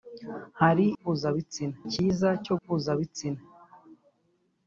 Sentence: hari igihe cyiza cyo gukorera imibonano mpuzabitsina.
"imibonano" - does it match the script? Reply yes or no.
no